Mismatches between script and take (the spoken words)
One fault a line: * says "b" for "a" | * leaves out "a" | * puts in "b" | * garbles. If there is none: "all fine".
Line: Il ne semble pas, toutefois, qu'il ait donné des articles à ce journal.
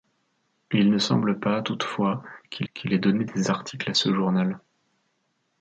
* puts in "qu'il"